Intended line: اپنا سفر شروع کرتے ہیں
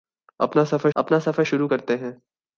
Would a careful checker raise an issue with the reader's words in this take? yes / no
yes